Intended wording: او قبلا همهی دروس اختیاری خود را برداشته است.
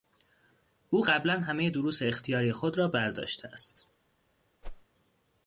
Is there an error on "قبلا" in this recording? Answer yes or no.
no